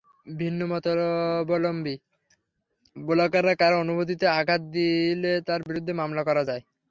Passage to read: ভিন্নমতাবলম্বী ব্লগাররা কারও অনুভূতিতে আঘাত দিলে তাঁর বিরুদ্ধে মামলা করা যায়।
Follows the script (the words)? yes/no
yes